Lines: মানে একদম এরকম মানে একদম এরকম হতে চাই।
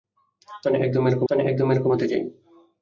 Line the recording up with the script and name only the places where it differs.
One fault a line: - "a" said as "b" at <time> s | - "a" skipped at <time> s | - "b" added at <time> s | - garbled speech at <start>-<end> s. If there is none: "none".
none